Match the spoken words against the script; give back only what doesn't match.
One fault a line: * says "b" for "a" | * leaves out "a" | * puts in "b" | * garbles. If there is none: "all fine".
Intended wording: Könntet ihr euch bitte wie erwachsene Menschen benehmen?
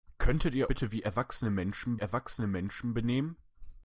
* leaves out "euch"
* puts in "erwachsene Menschen"